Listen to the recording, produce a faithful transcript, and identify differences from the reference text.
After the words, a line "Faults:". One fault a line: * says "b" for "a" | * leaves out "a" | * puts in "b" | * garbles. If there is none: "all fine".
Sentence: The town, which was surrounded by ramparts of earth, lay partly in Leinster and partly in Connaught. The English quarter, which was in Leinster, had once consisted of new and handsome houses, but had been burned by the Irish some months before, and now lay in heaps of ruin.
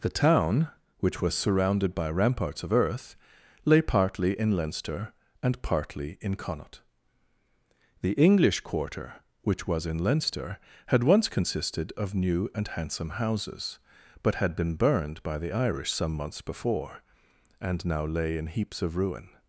The town, which was surrounded by ramparts of earth, lay partly in Leinster and partly in Connaught. The English quarter, which was in Leinster, had once consisted of new and handsome houses, but had been burned by the Irish some months before, and now lay in heaps of ruin.
Faults:
all fine